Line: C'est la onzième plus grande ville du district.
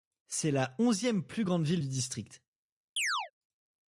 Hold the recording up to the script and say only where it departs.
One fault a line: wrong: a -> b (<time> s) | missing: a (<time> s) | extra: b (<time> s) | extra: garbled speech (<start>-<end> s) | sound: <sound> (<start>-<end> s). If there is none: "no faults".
sound: chirp (3.0-3.3 s)